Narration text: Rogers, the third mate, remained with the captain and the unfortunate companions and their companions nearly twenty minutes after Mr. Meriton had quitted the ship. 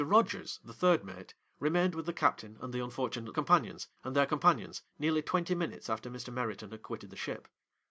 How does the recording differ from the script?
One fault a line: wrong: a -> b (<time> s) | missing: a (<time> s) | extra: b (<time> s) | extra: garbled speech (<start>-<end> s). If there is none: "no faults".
no faults